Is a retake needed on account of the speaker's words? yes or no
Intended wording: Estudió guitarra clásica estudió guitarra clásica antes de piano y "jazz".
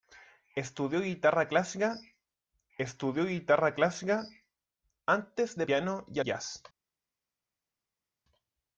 no